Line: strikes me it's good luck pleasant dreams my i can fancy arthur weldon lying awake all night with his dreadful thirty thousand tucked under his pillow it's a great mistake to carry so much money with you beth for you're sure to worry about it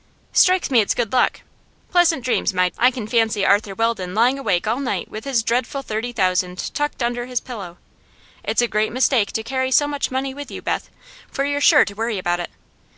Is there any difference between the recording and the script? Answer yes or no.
no